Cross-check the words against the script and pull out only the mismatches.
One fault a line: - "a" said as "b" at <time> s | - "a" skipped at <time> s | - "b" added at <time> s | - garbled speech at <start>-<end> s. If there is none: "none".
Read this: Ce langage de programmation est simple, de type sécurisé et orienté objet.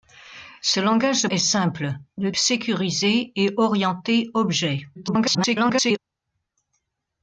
- "programmation" skipped at 1.3 s
- "type" skipped at 2.3 s
- garbled speech at 4.9-6.0 s